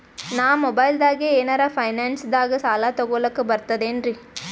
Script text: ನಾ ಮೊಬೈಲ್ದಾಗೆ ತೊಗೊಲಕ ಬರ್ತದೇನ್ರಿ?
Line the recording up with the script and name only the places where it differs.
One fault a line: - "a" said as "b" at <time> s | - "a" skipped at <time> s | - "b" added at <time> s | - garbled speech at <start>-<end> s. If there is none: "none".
- "ಏನರ ಫೈನಾನ್ಸದಾಗ ಸಾಲ" added at 1.3 s